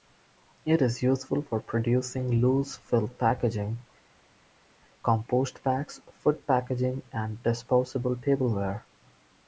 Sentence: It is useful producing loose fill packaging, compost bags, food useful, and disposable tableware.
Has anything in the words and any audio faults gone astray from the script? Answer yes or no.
yes